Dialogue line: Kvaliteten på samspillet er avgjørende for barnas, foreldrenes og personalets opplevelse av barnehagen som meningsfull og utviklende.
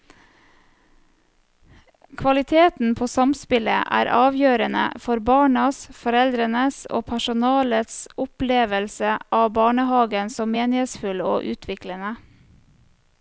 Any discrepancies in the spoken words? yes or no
no